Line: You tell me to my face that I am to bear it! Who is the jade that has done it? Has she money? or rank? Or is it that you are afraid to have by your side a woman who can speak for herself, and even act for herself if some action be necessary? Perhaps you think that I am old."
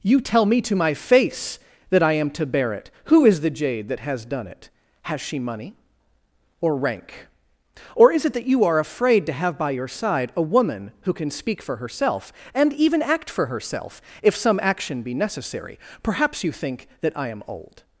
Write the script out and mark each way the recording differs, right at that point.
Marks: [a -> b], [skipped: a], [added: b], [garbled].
You tell me to my face that I am to bear it! Who is the jade that has done it? Has she money? or rank? Or is it that you are afraid to have by your side a woman who can speak for herself, and even act for herself if some action be necessary? Perhaps you think that I am old."